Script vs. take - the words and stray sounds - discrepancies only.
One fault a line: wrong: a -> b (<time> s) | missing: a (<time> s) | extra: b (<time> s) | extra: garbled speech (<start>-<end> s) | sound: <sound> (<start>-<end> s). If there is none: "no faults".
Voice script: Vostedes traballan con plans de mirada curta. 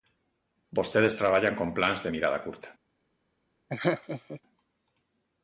sound: laugh (3.7-4.4 s)